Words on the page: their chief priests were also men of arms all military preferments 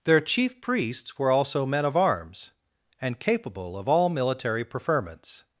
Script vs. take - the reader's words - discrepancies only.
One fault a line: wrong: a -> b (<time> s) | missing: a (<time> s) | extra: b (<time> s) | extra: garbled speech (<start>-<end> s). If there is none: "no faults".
extra: and capable of (3.0 s)